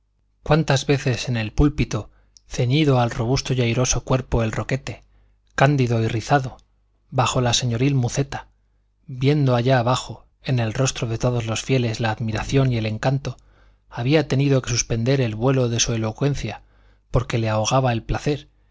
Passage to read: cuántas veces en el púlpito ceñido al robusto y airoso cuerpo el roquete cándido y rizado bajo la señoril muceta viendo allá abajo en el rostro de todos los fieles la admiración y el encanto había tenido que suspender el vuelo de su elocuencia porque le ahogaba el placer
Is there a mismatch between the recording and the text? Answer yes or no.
no